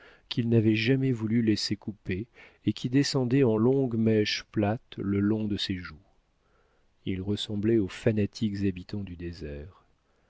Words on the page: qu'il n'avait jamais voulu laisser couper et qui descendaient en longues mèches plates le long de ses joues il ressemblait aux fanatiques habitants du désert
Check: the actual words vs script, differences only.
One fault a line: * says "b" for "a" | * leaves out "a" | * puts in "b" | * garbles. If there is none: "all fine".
all fine